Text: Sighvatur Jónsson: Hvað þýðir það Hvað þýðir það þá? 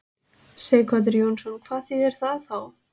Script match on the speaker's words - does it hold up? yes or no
no